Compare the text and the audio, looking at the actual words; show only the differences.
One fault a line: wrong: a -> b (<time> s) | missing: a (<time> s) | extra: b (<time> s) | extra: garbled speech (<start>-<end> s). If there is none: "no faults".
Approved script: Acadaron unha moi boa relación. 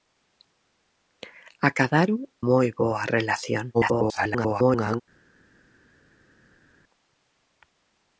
missing: unha (2.2 s)
extra: garbled speech (3.7-5.0 s)